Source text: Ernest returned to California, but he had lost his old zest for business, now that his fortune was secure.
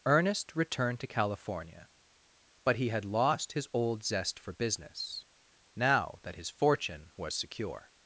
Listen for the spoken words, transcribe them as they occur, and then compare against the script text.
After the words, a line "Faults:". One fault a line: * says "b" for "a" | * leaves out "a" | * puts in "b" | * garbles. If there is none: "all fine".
Ernest returned to California, but he had lost his old zest for business, now that his fortune was secure.
Faults:
all fine